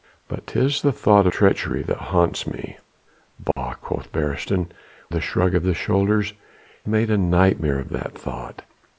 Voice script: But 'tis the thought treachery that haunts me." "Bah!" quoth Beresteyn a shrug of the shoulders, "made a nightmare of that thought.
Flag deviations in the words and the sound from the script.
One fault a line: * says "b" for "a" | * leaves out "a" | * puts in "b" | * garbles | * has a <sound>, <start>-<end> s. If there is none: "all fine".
* has a dropout, 3.5-3.6 s